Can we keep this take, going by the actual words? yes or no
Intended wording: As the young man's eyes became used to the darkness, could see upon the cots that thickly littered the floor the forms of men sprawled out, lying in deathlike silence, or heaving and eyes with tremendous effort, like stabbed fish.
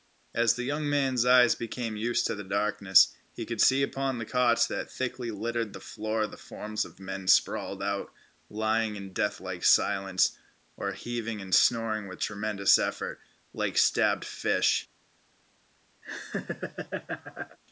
no